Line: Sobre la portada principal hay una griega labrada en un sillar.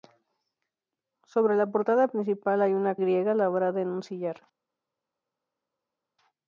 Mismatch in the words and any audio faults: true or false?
false